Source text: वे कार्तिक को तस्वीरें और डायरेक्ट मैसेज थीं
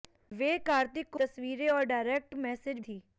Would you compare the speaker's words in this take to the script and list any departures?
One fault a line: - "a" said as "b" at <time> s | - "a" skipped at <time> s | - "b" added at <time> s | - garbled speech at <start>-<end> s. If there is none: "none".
none